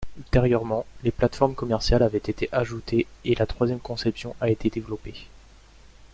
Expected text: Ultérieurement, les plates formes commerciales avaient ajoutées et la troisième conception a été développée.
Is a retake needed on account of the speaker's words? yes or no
yes